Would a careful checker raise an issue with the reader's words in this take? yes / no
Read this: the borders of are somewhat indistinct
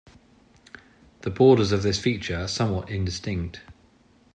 yes